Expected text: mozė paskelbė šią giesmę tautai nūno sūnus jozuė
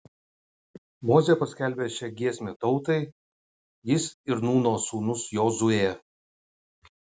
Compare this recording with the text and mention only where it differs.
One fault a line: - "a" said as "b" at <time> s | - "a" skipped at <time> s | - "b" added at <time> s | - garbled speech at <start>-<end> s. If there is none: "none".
- "jis ir" added at 3.9 s